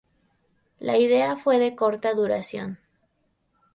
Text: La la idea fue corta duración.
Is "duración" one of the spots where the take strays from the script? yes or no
no